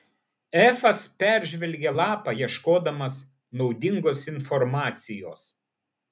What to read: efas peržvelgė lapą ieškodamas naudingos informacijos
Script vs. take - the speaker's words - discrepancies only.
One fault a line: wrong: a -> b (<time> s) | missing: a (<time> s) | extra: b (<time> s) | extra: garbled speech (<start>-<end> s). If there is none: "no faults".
no faults